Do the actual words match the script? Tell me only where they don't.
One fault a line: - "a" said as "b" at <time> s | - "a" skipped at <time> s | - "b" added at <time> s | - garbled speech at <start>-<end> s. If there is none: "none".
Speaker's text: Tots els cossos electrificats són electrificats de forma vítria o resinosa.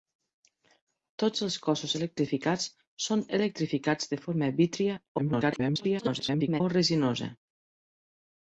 - garbled speech at 5.2-6.6 s